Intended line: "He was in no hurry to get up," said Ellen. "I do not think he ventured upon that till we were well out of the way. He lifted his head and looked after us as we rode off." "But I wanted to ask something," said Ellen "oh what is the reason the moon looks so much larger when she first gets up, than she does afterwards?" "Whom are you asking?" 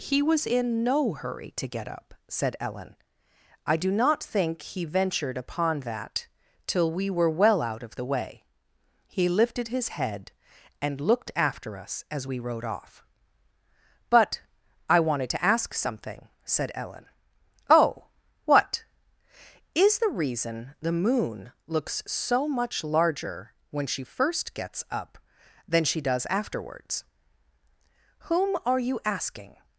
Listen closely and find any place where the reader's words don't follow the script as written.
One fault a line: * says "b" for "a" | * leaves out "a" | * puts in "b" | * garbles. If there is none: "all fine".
all fine